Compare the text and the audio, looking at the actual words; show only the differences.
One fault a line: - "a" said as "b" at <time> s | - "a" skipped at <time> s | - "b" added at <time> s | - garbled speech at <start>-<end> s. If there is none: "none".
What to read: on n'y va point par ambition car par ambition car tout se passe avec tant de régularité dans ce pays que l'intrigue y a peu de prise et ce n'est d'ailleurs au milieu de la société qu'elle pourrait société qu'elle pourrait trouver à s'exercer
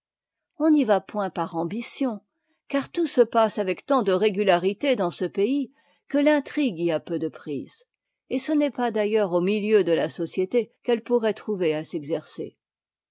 - "par ambition car" skipped at 2.9 s
- "pas" added at 8.7 s
- "société qu'elle pourrait" skipped at 11.3 s